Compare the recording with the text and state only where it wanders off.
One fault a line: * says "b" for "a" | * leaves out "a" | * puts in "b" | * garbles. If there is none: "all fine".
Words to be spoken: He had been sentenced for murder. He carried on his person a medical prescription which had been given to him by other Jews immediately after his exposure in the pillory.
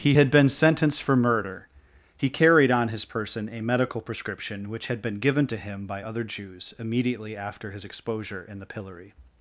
all fine